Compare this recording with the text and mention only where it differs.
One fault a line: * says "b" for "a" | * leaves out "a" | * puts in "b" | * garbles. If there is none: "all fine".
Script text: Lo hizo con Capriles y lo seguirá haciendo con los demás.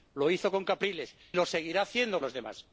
* leaves out "y"
* leaves out "con"